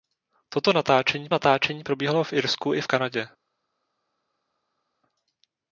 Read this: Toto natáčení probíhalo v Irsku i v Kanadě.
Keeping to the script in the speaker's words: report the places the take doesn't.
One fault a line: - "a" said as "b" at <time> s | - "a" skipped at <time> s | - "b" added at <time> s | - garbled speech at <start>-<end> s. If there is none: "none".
- "natáčení" added at 1.3 s